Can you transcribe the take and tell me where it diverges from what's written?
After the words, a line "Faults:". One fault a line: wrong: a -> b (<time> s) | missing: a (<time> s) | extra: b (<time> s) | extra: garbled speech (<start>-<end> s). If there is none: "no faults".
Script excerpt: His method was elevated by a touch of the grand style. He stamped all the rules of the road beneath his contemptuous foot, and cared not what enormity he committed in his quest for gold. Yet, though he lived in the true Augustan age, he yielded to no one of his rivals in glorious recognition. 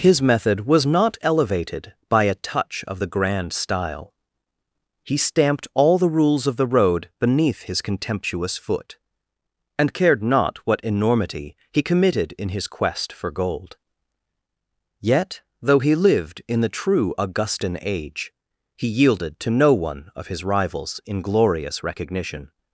His method was not elevated by a touch of the grand style. He stamped all the rules of the road beneath his contemptuous foot, and cared not what enormity he committed in his quest for gold. Yet, though he lived in the true Augustan age, he yielded to no one of his rivals in glorious recognition.
Faults:
extra: not (0.8 s)